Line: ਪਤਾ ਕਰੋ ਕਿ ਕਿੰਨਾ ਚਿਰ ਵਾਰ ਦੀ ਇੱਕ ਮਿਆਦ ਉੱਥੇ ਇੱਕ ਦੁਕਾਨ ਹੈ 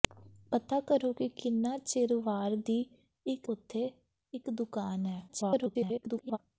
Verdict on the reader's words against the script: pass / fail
fail